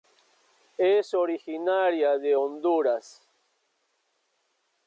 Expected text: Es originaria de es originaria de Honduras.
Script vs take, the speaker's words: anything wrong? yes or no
yes